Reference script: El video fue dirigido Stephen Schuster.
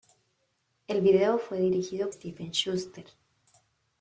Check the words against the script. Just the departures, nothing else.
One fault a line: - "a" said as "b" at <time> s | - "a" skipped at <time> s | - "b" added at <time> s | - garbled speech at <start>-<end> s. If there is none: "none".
none